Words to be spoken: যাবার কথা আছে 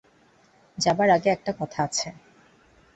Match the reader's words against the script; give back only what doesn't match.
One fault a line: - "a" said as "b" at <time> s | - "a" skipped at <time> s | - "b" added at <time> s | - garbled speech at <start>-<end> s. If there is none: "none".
- "আগে একটা" added at 1.1 s